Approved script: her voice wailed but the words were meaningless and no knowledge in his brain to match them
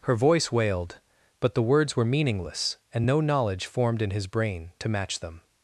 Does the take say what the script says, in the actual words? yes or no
no